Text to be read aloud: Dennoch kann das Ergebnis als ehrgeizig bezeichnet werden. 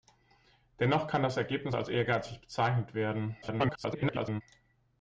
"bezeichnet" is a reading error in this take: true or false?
false